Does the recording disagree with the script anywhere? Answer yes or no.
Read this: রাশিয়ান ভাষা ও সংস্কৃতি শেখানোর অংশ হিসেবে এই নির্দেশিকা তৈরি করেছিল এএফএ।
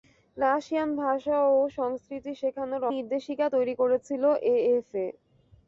yes